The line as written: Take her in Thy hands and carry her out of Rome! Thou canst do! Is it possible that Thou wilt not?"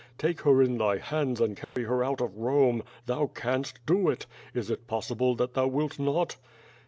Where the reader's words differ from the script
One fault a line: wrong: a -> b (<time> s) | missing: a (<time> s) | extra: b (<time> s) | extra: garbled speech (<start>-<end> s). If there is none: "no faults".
extra: it (4.1 s)